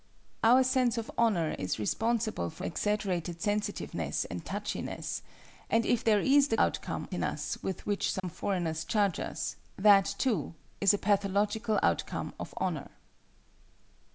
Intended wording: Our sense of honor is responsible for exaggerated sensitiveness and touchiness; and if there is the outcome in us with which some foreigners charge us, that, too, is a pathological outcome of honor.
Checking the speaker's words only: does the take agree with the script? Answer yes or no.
yes